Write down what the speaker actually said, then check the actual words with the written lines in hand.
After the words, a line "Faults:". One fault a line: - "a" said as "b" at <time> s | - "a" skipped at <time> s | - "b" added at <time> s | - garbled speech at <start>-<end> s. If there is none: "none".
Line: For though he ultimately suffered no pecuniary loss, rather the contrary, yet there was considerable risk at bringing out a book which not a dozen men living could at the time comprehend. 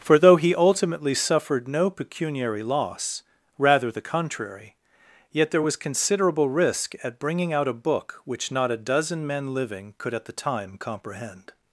For though he ultimately suffered no pecuniary loss, rather the contrary, yet there was considerable risk at bringing out a book which not a dozen men living could at the time comprehend.
Faults:
none